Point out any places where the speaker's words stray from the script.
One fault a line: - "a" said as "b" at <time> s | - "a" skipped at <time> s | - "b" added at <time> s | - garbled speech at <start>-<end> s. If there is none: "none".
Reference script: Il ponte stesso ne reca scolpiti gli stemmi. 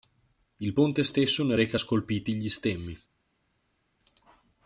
none